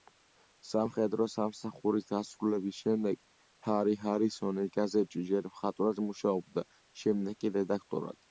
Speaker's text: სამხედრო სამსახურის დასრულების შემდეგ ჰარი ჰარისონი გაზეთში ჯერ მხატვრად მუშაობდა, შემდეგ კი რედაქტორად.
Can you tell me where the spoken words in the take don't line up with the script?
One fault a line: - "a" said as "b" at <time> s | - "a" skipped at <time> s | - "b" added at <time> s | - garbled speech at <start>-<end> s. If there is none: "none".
none